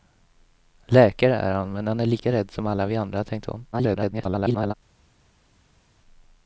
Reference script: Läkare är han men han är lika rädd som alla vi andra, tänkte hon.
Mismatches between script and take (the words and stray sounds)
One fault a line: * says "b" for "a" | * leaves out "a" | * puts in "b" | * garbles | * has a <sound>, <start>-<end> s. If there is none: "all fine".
* garbles